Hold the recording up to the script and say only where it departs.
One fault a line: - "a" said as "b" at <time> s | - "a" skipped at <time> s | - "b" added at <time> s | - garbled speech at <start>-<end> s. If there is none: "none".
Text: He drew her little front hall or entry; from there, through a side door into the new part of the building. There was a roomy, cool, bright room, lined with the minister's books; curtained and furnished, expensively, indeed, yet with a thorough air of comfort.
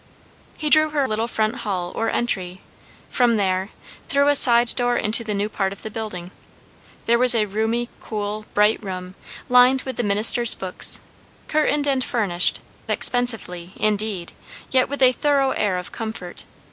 none